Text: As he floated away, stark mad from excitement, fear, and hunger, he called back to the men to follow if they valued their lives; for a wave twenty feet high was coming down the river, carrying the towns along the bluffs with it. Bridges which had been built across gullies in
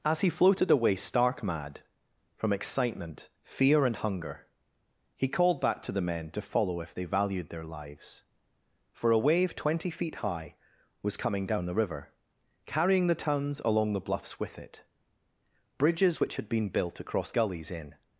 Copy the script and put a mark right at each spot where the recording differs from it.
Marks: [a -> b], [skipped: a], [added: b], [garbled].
As he floated away, stark mad from excitement, fear, and hunger, he called back to the men to follow if they valued their lives; for a wave twenty feet high was coming down the river, carrying the towns along the bluffs with it. Bridges which had been built across gullies in